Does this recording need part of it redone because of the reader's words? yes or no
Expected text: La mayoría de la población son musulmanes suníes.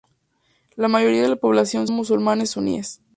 yes